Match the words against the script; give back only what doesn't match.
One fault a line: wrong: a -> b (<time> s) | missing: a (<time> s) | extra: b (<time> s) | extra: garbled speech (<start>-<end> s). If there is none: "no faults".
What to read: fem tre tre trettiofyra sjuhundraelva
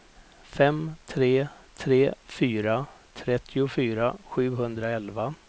extra: fyra (2.2 s)